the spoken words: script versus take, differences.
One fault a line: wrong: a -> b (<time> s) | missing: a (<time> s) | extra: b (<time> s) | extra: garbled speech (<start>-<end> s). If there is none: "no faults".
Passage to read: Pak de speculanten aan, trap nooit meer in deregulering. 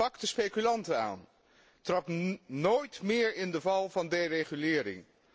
extra: de val van (3.5 s)